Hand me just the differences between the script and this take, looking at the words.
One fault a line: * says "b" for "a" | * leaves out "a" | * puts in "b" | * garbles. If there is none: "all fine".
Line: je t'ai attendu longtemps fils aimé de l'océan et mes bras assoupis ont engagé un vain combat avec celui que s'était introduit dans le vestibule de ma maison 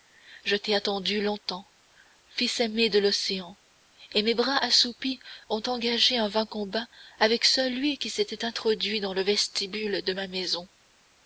* says "qui" for "que"